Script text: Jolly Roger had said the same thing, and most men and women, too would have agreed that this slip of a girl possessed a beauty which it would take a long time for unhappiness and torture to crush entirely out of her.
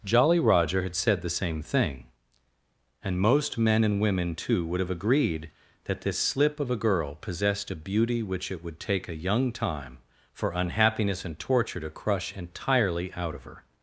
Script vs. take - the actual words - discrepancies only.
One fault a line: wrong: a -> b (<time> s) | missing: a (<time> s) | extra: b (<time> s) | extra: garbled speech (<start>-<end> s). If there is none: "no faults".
wrong: long -> young (9.2 s)